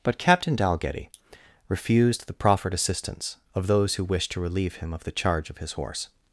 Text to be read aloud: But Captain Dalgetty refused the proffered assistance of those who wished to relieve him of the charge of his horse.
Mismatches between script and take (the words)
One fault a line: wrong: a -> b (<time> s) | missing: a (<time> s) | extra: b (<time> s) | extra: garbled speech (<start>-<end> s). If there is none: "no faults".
no faults